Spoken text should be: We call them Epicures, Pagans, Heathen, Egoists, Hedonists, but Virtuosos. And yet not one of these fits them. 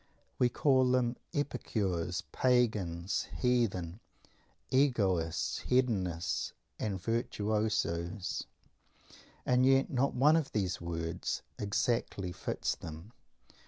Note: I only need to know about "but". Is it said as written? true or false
false